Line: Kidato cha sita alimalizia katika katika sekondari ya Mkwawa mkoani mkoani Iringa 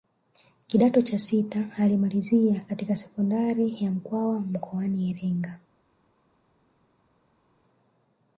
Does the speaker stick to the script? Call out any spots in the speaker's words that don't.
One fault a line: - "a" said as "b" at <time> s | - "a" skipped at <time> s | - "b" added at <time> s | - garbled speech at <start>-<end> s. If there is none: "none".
- "katika" skipped at 3.0 s
- "mkoani" skipped at 5.1 s